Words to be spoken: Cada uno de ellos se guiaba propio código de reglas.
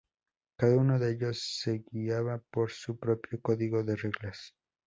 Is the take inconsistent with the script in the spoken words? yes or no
yes